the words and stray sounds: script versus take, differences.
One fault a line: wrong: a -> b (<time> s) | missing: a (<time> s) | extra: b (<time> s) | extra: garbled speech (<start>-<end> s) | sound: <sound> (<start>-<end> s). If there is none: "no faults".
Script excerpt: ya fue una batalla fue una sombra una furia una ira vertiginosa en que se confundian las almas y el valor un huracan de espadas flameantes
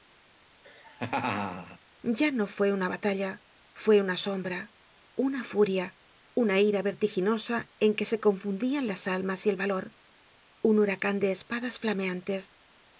sound: laugh (0.6-1.8 s)
extra: no (2.3 s)